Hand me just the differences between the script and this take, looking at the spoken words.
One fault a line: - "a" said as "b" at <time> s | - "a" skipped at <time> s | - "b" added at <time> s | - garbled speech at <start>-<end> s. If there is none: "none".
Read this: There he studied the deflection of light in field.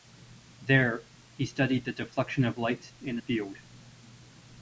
none